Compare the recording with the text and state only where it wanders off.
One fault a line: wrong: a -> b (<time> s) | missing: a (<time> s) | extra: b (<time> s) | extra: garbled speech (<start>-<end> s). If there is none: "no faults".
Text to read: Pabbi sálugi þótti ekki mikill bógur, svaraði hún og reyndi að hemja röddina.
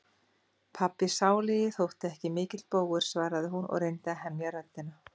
no faults